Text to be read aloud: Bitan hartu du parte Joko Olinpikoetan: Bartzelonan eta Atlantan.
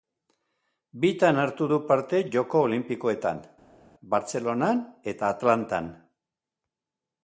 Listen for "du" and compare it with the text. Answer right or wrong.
right